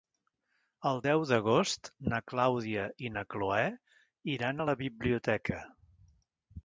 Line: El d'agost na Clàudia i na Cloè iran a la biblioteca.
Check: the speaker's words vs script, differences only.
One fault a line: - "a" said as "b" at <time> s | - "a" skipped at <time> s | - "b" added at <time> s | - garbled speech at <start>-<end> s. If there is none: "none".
- "deu" added at 1.1 s